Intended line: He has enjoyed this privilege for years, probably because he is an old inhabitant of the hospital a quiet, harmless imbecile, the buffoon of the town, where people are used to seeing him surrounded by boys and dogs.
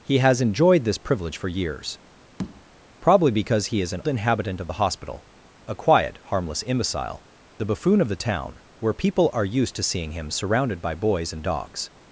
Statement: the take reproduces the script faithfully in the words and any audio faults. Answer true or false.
false